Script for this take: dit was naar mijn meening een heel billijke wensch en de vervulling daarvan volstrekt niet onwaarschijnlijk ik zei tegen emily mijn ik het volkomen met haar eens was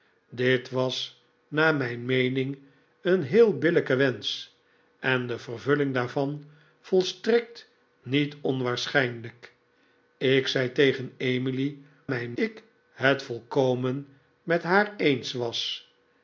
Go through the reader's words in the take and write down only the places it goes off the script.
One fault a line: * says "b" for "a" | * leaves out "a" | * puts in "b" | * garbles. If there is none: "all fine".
all fine